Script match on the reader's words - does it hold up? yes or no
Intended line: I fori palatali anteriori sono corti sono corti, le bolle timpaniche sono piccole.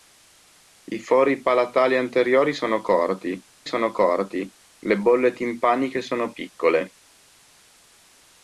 yes